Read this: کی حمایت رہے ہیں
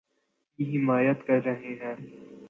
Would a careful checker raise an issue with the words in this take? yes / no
yes